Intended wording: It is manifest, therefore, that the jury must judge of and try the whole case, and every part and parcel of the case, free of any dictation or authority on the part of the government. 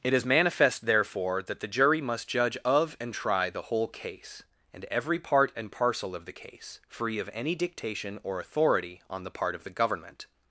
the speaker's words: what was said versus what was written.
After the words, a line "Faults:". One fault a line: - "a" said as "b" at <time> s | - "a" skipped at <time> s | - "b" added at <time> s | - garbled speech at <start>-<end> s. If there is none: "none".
It is manifest, therefore, that the jury must judge of and try the whole case, and every part and parcel of the case, free of any dictation or authority on the part of the government.
Faults:
none